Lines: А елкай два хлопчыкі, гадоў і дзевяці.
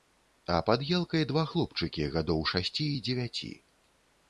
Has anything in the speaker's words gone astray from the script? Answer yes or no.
yes